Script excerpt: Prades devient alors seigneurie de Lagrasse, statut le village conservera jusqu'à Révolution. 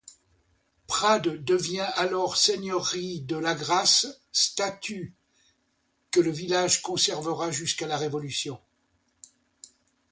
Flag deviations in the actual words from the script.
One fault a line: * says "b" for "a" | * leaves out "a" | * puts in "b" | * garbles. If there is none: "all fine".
* puts in "que"
* puts in "la"